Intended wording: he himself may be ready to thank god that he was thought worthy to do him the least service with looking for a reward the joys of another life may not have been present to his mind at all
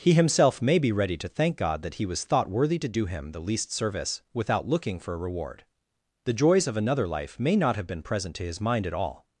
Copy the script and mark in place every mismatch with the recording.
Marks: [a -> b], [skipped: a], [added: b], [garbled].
he himself may be ready to thank god that he was thought worthy to do him the least service [with -> without] looking for a reward the joys of another life may not have been present to his mind at all